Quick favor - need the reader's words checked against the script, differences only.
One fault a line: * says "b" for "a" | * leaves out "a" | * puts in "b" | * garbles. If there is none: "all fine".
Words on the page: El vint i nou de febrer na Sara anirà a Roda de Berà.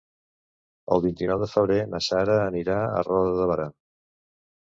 all fine